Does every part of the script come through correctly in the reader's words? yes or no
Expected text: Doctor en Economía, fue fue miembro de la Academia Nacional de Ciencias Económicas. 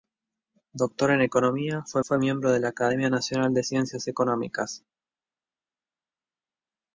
yes